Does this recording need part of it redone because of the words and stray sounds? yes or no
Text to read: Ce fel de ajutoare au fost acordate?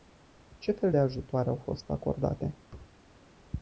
yes